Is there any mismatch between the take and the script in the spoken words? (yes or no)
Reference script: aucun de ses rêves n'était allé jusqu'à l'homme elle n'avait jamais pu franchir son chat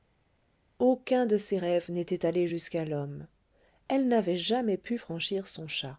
no